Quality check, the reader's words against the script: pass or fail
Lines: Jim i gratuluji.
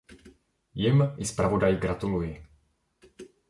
fail